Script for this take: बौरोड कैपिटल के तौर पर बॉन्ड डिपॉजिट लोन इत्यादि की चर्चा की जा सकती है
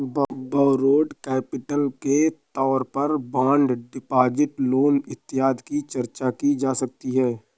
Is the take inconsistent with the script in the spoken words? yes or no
no